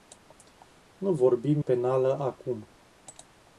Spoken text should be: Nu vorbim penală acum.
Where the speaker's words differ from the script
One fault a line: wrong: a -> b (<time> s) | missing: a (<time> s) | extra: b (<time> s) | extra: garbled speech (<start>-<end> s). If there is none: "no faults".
no faults